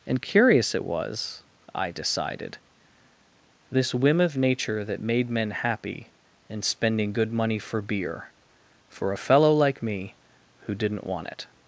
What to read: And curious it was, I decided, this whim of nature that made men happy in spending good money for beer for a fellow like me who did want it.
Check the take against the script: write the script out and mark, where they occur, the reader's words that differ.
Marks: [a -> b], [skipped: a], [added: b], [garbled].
And curious it was, I decided, this whim of nature that made men happy in spending good money for beer for a fellow like me who [did -> didn't] want it.